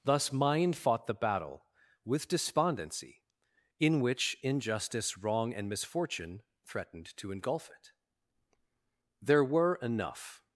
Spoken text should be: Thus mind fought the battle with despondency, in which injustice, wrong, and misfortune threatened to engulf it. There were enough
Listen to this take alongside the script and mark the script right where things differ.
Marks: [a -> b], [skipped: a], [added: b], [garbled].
Thus mind fought the battle with despondency, in which injustice, wrong, and misfortune threatened to engulf it. There were enough